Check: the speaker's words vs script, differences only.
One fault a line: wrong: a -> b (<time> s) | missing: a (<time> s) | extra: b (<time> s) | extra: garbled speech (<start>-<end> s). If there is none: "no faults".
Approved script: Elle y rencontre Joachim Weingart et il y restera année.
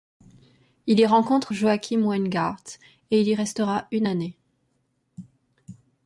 wrong: Elle -> Il (0.9 s)
extra: une (3.9 s)